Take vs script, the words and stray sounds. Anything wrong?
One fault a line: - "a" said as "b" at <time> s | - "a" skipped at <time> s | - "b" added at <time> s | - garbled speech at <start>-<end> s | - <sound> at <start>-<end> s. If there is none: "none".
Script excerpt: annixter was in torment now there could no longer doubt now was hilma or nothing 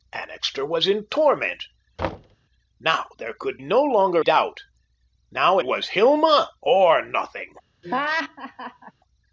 - thud at 2.0-2.4 s
- laugh at 7.8-8.9 s